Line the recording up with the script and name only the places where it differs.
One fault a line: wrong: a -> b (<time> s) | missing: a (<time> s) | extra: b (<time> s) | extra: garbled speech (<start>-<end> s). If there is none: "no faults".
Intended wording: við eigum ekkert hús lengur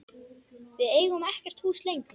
no faults